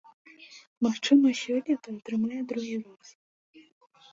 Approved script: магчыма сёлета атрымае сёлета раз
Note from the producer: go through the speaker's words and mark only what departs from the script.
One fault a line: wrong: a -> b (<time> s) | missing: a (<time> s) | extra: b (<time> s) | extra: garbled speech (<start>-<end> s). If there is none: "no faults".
wrong: сёлета -> другі (2.5 s)